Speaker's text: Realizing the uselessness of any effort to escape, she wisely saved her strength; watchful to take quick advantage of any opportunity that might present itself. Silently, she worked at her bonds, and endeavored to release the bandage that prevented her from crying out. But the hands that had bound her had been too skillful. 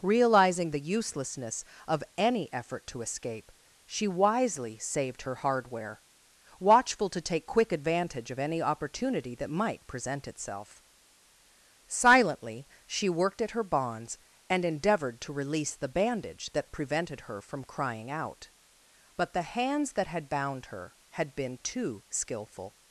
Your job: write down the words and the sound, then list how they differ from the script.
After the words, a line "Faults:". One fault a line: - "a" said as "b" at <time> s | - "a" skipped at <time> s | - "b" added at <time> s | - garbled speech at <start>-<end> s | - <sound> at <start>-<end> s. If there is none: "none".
Realizing the uselessness of any effort to escape, she wisely saved her hardware; watchful to take quick advantage of any opportunity that might present itself. Silently, she worked at her bonds, and endeavored to release the bandage that prevented her from crying out. But the hands that had bound her had been too skillful.
Faults:
- "strength" said as "hardware" at 5.4 s